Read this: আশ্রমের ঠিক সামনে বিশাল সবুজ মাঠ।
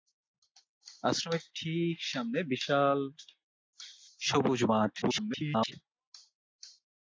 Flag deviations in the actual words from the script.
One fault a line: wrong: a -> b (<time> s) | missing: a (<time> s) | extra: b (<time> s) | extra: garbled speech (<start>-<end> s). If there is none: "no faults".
extra: garbled speech (5.0-5.7 s)